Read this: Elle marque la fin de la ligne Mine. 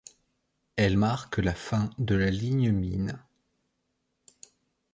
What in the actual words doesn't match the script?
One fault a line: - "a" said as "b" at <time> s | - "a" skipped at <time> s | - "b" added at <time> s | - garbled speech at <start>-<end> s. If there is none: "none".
none